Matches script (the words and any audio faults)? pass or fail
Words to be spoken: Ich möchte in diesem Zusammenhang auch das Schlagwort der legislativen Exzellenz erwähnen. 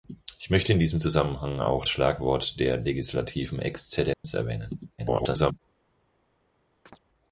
fail